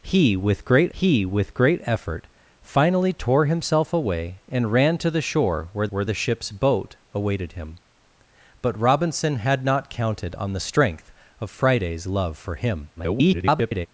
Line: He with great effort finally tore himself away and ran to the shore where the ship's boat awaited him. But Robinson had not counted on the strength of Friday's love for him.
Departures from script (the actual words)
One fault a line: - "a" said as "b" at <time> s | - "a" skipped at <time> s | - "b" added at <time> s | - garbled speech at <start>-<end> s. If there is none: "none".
- "he with great" added at 0.9 s
- "where" added at 5.9 s
- garbled speech at 13.0-13.9 s